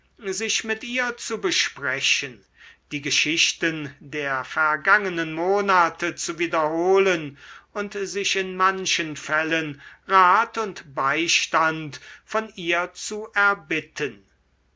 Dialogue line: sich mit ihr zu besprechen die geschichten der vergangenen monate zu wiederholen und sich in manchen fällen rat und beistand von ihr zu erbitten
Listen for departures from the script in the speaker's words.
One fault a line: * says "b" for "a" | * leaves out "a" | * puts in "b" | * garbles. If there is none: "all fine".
all fine